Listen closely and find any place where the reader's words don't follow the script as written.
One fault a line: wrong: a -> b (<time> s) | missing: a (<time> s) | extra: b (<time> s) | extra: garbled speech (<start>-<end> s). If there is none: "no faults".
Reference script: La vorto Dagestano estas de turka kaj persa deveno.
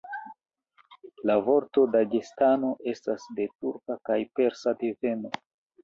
no faults